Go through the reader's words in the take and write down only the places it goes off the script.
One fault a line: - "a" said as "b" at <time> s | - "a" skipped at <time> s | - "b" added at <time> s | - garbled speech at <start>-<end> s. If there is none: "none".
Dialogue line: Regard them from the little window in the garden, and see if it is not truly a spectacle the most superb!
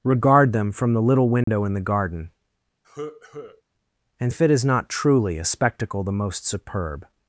- "see" skipped at 4.3 s